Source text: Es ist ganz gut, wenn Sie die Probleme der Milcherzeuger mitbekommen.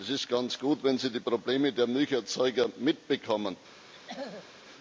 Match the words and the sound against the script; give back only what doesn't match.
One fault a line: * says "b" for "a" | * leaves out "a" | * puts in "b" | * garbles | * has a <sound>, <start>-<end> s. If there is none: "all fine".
* has a throat clearing, 3.9-4.5 s